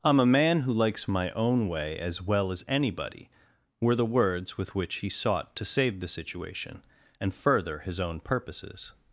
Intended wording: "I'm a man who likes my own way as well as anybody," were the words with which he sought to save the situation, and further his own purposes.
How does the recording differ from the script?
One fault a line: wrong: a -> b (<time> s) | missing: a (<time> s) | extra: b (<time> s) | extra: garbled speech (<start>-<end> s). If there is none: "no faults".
no faults